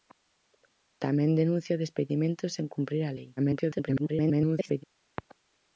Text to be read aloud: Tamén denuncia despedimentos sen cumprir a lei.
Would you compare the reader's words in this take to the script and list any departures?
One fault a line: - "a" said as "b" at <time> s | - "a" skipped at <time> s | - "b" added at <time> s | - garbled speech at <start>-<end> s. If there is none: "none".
- garbled speech at 3.4-4.8 s